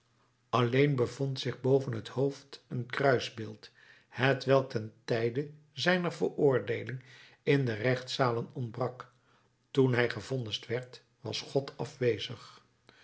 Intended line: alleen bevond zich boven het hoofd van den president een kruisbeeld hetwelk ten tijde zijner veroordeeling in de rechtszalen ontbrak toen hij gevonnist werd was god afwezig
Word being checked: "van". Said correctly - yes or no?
no